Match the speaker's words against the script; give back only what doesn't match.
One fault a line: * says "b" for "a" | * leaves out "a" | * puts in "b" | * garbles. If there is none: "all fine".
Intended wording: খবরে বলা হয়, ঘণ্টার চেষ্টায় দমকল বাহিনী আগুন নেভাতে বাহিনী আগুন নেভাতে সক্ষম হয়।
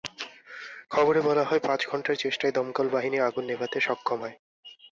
* puts in "পাঁচ"
* leaves out "বাহিনী আগুন নেভাতে"